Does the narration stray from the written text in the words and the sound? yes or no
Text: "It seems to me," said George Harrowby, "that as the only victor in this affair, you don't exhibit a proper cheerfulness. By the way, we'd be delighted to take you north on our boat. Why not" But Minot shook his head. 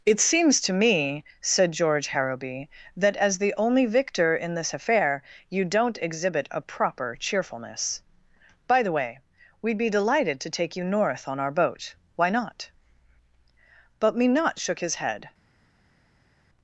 no